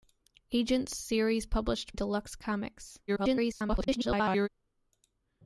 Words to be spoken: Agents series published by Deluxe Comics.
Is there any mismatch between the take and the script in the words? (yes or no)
yes